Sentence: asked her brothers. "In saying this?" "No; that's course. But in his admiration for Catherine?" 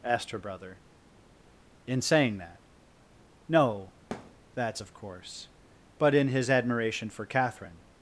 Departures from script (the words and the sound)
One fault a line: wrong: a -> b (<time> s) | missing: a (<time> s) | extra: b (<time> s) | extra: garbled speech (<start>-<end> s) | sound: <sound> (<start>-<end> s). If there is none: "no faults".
wrong: brothers -> brother (0.4 s)
wrong: this -> that (2.4 s)
sound: thud (4.1-4.4 s)
extra: of (4.8 s)